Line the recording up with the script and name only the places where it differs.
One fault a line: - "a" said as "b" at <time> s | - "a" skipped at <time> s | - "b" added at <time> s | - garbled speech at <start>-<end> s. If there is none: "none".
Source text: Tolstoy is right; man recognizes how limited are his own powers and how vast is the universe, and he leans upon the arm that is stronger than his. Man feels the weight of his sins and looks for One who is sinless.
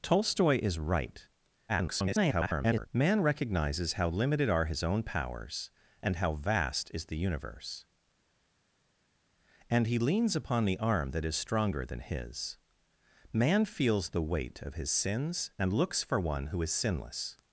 - garbled speech at 1.7-2.9 s